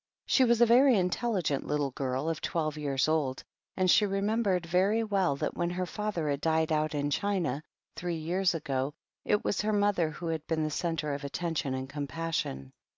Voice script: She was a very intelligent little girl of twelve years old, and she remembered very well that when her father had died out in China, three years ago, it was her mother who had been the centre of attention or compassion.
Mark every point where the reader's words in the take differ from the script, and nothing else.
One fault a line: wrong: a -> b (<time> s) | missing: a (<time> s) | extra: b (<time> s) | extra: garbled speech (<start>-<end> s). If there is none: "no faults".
wrong: or -> and (11.7 s)